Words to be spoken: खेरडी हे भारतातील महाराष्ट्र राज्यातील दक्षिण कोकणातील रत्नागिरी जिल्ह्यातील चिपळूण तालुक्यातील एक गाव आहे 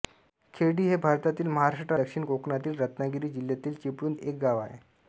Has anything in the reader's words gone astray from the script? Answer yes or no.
yes